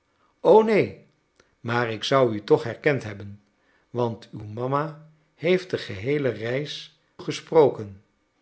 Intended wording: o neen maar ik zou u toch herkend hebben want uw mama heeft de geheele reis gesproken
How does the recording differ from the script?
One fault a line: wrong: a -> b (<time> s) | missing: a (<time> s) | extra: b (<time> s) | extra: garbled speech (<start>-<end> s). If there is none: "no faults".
no faults